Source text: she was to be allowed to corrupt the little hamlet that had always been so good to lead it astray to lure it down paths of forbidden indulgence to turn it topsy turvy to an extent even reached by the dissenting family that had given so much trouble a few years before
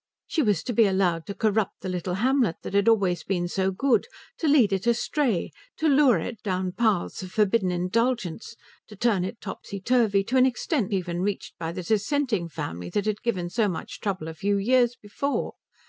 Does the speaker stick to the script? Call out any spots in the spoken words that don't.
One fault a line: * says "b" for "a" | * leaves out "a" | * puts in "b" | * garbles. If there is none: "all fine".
all fine